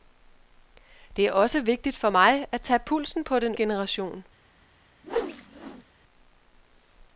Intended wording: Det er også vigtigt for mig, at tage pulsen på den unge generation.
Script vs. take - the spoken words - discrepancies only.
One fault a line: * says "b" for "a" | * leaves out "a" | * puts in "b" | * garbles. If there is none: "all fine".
* leaves out "unge"